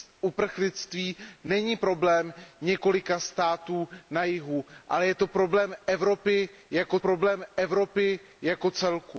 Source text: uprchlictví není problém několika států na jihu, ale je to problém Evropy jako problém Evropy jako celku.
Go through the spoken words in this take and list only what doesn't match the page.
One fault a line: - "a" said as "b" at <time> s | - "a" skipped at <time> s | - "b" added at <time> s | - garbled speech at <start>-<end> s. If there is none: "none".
none